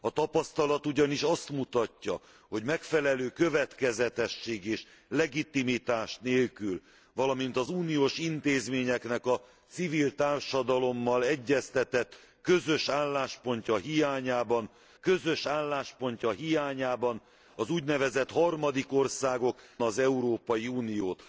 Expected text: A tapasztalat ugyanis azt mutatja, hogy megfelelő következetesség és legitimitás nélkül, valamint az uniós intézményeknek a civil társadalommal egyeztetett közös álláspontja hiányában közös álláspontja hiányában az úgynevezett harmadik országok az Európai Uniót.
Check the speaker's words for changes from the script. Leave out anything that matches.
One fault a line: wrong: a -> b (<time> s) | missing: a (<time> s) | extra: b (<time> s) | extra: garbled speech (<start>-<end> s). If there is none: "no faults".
no faults